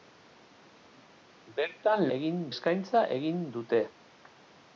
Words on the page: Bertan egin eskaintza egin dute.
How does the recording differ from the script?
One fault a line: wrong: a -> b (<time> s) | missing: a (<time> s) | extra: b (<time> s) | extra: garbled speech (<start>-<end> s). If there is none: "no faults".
no faults